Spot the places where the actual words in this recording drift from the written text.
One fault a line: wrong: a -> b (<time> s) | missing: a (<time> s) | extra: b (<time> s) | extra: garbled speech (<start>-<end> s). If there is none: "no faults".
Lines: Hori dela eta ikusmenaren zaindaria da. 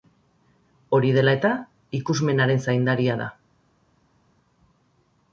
no faults